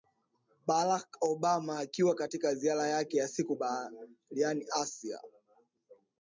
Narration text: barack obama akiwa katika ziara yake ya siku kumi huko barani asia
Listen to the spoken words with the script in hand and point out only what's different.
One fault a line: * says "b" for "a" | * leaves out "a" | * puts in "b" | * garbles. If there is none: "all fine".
* leaves out "kumi huko"